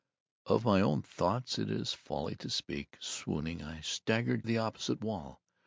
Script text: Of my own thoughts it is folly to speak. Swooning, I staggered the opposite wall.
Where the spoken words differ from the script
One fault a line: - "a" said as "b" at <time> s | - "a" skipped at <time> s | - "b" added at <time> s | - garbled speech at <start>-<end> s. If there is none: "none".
none